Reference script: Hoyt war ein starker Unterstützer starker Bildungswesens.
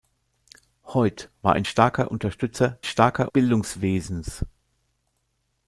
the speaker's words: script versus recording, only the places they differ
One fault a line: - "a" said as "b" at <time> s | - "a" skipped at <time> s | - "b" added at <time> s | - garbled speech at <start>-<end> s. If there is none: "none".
none